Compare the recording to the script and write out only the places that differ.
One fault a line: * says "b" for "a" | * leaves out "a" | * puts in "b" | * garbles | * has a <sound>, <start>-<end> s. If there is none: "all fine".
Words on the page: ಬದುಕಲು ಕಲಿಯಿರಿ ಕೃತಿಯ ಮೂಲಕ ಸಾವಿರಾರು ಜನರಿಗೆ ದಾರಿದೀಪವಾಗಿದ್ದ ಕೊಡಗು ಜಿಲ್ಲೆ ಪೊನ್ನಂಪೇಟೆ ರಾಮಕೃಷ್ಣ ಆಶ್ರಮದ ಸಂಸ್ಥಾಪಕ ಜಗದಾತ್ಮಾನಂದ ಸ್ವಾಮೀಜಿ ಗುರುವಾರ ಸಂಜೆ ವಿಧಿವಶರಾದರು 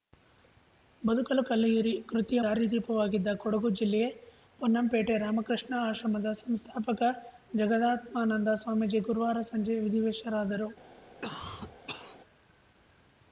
* leaves out "ಮೂಲಕ ಸಾವಿರಾರು ಜನರಿಗೆ"
* has a cough, 11.2-12.2 s